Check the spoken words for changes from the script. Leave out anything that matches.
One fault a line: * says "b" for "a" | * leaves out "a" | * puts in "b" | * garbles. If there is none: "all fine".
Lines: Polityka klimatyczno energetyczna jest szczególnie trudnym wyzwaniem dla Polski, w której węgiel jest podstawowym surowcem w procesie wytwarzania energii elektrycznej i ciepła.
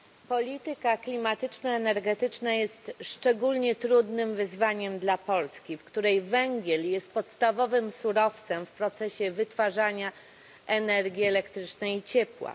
all fine